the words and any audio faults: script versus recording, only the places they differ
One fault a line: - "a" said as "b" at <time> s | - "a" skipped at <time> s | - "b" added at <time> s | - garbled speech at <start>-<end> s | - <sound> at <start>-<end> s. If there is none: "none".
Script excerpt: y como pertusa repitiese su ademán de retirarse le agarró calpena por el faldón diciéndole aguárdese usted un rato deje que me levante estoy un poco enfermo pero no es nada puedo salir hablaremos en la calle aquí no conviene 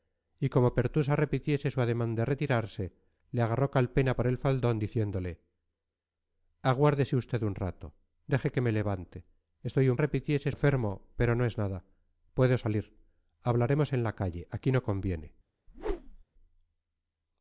- "poco" said as "repitiese" at 10.0 s
- whoosh at 15.7-16.2 s